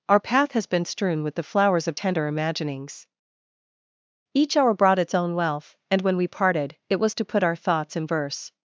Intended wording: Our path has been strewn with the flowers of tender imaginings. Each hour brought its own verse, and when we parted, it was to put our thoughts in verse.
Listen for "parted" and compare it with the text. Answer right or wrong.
right